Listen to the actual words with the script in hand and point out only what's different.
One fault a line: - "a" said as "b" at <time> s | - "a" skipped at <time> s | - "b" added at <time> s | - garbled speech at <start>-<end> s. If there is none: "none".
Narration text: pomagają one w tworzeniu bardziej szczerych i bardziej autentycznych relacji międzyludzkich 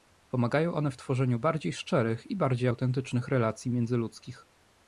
none